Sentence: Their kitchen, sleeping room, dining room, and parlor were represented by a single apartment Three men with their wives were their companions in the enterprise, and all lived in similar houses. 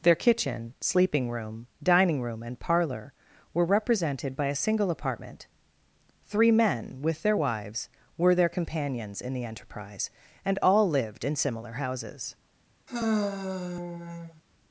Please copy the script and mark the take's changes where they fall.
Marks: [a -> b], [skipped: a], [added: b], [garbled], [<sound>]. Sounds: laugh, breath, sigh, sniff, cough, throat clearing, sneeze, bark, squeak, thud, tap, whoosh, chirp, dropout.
Their kitchen, sleeping room, dining room, and parlor were represented by a single apartment Three men with their wives were their companions in the enterprise, and all lived in similar houses. [sigh]